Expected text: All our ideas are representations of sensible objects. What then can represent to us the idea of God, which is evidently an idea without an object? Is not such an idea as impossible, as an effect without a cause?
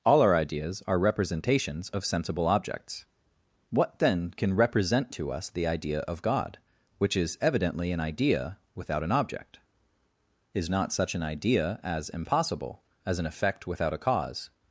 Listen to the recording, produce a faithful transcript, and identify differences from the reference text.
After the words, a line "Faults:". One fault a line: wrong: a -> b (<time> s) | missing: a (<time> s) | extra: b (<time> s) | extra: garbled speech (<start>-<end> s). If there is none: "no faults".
All our ideas are representations of sensible objects. What then can represent to us the idea of God, which is evidently an idea without an object? Is not such an idea as impossible, as an effect without a cause?
Faults:
no faults